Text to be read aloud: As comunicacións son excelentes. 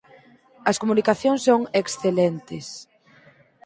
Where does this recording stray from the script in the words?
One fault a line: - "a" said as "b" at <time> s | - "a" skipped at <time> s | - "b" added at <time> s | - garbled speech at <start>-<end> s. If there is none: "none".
none